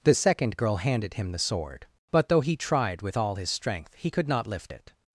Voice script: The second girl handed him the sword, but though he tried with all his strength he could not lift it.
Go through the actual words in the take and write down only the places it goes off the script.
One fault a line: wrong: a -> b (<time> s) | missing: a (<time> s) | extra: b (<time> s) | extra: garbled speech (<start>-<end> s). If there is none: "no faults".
no faults